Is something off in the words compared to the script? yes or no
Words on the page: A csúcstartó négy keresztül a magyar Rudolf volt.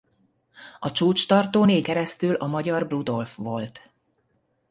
no